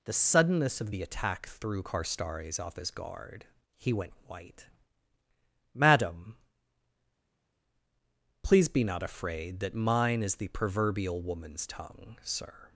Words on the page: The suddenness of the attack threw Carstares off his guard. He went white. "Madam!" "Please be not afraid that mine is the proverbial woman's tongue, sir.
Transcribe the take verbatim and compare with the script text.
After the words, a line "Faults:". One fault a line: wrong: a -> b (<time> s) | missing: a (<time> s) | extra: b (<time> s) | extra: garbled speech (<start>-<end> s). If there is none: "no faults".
The suddenness of the attack threw Carstares off his guard. He went white. "Madam!" "Please be not afraid that mine is the proverbial woman's tongue, sir.
Faults:
no faults